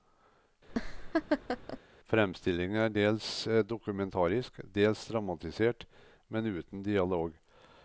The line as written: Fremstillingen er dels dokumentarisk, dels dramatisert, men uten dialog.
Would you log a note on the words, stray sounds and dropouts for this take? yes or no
yes